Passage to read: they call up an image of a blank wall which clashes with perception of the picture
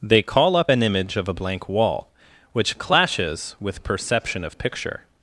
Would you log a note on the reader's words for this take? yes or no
yes